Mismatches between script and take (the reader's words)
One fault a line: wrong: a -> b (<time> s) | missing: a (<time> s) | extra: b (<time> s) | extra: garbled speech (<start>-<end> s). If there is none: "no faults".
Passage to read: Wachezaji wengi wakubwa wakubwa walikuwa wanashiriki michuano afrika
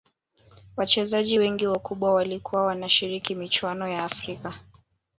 missing: wakubwa (2.1 s)
extra: ya (3.9 s)